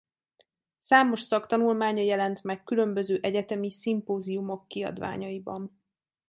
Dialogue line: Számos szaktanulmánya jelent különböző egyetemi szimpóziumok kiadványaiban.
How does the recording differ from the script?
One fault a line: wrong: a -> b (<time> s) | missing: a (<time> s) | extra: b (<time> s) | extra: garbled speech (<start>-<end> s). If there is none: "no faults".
extra: meg (2.4 s)